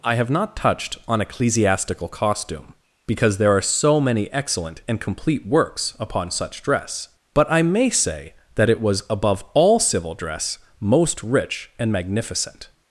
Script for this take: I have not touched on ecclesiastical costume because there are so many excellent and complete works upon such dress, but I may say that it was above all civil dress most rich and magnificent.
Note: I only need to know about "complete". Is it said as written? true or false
true